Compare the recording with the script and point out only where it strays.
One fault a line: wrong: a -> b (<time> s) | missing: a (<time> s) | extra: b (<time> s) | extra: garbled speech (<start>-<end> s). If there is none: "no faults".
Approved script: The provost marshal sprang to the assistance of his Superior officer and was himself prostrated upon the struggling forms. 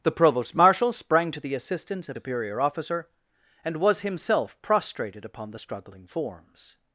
missing: his (2.2 s)